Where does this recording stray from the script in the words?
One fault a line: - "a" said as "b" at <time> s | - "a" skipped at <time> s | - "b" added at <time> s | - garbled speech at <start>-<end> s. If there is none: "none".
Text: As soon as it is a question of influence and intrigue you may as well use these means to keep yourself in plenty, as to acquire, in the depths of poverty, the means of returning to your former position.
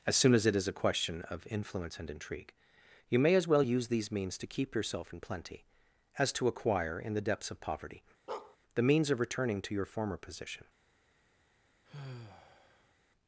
none